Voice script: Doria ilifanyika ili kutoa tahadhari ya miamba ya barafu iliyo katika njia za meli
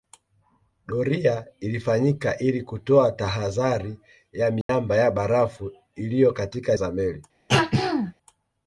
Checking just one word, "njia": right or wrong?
wrong